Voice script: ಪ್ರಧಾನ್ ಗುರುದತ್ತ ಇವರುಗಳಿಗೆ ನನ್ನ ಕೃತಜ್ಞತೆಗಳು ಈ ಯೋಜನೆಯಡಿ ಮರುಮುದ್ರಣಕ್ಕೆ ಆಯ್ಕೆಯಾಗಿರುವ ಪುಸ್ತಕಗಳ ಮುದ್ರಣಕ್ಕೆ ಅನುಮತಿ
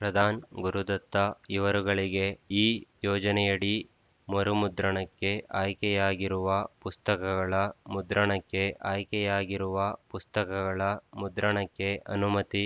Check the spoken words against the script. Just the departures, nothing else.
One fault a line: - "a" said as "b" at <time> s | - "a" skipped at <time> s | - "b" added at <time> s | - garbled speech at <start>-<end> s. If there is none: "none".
- "ನನ್ನ ಕೃತಜ್ಞತೆಗಳು" skipped at 2.3 s
- "ಆಯ್ಕೆಯಾಗಿರುವ ಪುಸ್ತಕಗಳ ಮುದ್ರಣಕ್ಕೆ" added at 8.9 s